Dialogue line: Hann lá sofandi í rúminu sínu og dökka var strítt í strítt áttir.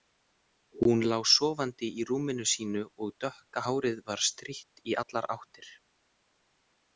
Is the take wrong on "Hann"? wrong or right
wrong